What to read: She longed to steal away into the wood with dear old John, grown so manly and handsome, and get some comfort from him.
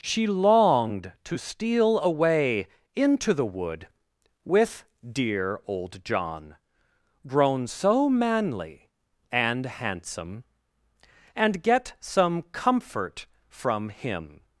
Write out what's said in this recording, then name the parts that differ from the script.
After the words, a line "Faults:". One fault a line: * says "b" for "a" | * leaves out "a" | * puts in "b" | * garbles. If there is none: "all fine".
She longed to steal away into the wood with dear old John, grown so manly and handsome, and get some comfort from him.
Faults:
all fine